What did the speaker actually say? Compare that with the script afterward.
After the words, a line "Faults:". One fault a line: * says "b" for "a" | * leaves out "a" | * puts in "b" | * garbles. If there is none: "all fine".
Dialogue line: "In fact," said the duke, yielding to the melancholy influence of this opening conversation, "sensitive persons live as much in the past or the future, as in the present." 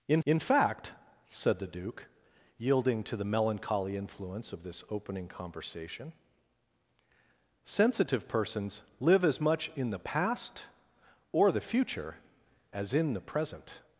"In in fact," said the duke, yielding to the melancholy influence of this opening conversation, "sensitive persons live as much in the past or the future, as in the present."
Faults:
* puts in "in"